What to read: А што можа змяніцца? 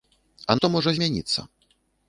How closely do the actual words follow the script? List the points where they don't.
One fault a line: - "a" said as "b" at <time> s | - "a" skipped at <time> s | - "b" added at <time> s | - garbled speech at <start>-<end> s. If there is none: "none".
none